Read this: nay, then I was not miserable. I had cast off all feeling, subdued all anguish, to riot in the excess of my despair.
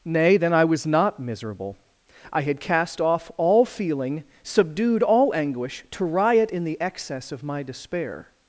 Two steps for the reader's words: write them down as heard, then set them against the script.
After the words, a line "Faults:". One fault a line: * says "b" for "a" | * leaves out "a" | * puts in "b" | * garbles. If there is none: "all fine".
nay, then I was not miserable. I had cast off all feeling, subdued all anguish, to riot in the excess of my despair.
Faults:
all fine